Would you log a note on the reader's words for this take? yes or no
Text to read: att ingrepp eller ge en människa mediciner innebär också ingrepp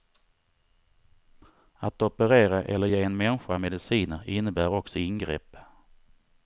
yes